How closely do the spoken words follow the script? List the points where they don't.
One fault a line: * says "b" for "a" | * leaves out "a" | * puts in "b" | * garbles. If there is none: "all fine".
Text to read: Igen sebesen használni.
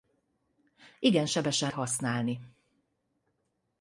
all fine